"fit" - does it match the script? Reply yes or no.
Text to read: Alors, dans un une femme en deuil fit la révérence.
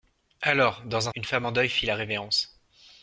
yes